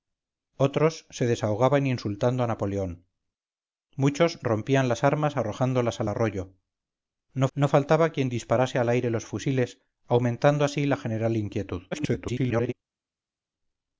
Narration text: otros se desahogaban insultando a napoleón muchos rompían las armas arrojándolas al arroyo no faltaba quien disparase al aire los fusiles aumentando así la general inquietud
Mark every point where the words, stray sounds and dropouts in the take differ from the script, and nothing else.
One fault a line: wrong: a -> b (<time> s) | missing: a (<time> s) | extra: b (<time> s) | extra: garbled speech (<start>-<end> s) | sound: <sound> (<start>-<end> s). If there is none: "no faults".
extra: no (7.5 s)
extra: garbled speech (11.9-12.7 s)